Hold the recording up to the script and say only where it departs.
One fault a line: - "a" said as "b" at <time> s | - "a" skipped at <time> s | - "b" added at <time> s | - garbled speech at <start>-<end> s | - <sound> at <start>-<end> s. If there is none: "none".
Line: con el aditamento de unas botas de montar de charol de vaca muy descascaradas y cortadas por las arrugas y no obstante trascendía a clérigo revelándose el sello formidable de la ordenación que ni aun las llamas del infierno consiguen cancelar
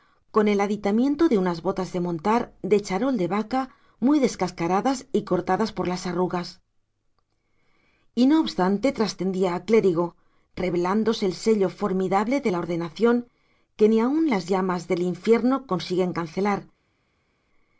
none